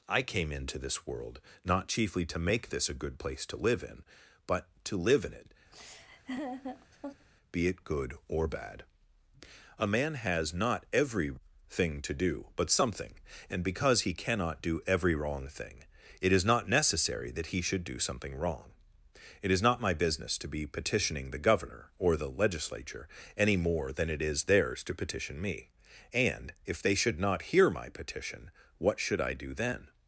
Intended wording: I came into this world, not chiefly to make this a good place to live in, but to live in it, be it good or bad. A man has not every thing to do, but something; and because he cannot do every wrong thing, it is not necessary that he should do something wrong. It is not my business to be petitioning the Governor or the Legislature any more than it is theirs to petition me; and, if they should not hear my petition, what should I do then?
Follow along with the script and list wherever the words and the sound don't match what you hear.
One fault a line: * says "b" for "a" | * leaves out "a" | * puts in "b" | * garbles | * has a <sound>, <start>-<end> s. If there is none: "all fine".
* has a laugh, 5.7-7.3 s